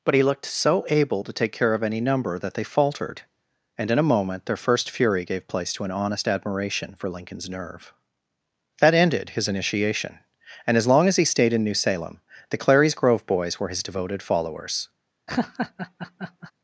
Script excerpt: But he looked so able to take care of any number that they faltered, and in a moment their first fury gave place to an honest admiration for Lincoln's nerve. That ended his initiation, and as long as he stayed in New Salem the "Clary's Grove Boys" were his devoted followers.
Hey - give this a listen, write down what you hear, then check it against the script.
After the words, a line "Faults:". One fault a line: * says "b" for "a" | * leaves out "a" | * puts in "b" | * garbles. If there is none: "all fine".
But he looked so able to take care of any number that they faltered, and in a moment their first fury gave place to an honest admiration for Lincoln's nerve. That ended his initiation, and as long as he stayed in New Salem the "Clary's Grove Boys" were his devoted followers.
Faults:
all fine